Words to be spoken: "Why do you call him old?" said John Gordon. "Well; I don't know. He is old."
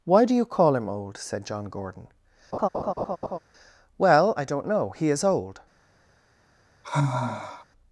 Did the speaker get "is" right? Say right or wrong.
right